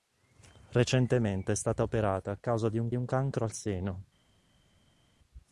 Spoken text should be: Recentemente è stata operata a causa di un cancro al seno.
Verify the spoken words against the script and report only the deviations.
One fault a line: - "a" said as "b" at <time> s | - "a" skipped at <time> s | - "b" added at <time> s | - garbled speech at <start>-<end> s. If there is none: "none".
- "un" added at 2.9 s